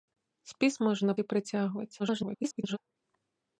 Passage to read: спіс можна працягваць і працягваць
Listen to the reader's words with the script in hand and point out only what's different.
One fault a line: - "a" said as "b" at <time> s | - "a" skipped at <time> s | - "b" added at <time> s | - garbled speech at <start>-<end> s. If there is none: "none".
- "працягваць" skipped at 1.2 s
- garbled speech at 2.0-2.8 s